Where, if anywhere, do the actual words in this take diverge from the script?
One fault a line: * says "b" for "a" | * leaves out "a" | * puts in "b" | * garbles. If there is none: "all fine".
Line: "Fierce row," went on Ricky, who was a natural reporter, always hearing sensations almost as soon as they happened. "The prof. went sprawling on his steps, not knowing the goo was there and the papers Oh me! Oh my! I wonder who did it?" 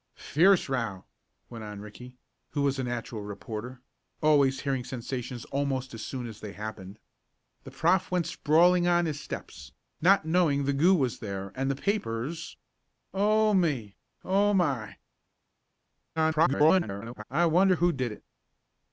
* garbles